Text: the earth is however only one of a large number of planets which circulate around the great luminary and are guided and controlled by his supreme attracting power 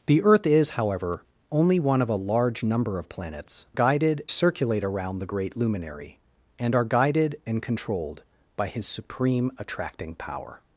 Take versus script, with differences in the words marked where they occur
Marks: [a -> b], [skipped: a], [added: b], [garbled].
the earth is however only one of a large number of planets [which -> guided] circulate around the great luminary and are guided and controlled by his supreme attracting power